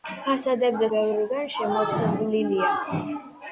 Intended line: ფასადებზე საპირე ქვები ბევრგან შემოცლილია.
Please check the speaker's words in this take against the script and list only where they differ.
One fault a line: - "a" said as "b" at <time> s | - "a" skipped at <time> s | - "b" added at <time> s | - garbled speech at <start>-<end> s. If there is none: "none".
- "საპირე ქვები" skipped at 0.9 s